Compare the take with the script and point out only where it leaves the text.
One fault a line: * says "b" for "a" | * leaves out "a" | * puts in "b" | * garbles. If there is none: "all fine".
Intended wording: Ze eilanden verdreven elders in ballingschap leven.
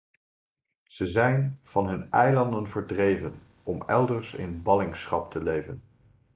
* puts in "zijn van hun"
* puts in "om"
* puts in "te"